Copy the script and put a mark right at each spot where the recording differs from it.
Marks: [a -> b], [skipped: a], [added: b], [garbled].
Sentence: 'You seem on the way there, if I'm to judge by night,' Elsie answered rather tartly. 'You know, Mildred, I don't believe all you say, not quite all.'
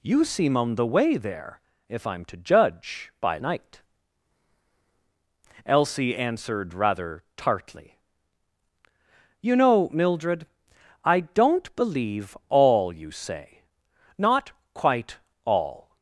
'You seem on the way there, if I'm to judge by night,' Elsie answered rather tartly. 'You know, Mildred, I don't believe all you say, not quite all.'